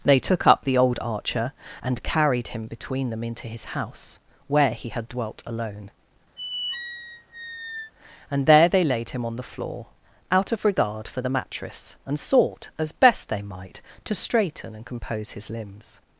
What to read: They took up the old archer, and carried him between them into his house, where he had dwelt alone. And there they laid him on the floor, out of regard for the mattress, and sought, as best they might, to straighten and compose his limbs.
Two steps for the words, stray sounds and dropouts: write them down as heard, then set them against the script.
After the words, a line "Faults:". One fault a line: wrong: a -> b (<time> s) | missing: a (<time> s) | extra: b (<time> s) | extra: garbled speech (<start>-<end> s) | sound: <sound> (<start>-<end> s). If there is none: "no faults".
They took up the old archer, and carried him between them into his house, where he had dwelt alone. And there they laid him on the floor, out of regard for the mattress, and sought, as best they might, to straighten and compose his limbs.
Faults:
sound: squeak (6.4-7.9 s)